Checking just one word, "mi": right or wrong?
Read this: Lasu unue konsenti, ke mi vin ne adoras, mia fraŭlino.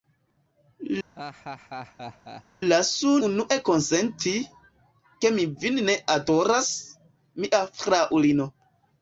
right